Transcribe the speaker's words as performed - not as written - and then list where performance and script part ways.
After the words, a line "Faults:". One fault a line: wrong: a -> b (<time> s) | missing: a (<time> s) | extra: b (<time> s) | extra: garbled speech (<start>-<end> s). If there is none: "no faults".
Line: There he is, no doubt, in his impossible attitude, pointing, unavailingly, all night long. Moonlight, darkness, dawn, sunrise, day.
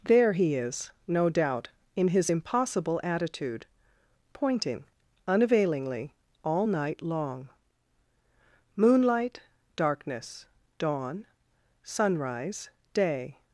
There he is, no doubt, in his impossible attitude, pointing, unavailingly, all night long. Moonlight, darkness, dawn, sunrise, day.
Faults:
no faults